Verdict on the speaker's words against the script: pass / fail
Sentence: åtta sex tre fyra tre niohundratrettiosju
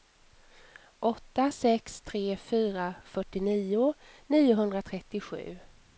fail